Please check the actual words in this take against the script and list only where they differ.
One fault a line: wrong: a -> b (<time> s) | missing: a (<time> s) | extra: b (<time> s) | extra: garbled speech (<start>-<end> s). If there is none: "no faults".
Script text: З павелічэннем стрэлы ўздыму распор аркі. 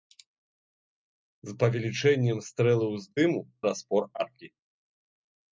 no faults